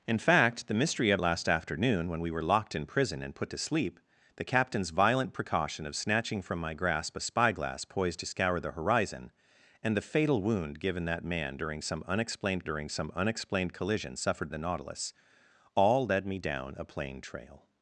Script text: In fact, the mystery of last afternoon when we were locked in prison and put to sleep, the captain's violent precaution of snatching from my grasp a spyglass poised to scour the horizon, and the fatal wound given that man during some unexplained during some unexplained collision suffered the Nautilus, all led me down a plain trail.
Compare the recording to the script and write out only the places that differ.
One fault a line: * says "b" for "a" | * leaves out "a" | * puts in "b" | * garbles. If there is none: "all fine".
all fine